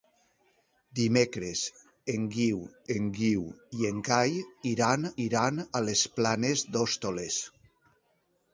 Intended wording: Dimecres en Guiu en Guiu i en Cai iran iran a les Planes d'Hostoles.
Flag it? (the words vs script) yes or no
no